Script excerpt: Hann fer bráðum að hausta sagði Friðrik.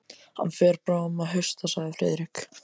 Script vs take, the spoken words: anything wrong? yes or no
no